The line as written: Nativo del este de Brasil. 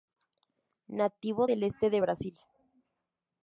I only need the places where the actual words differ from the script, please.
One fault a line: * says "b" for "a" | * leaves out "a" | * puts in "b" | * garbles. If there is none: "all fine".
all fine